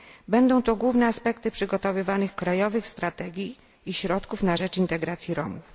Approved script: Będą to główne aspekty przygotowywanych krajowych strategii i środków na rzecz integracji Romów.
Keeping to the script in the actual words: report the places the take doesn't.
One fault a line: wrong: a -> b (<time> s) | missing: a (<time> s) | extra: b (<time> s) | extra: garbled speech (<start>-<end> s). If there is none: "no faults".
no faults